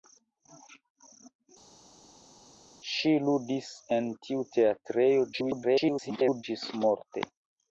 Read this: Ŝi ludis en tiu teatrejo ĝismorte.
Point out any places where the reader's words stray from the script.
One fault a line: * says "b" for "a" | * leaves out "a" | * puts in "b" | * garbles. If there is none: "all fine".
* garbles